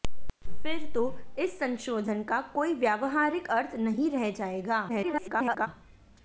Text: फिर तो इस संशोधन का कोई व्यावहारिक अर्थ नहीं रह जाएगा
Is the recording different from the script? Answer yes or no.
yes